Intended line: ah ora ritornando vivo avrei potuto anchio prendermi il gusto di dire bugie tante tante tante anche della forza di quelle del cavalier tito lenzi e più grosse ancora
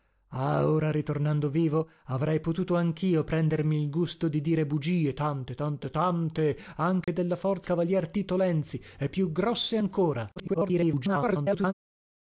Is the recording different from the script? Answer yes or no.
yes